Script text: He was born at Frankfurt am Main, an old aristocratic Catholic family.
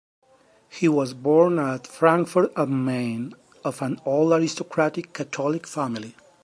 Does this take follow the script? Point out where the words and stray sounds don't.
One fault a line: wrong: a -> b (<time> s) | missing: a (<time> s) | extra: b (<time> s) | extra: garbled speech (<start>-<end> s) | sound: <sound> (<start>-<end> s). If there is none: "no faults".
extra: of (3.6 s)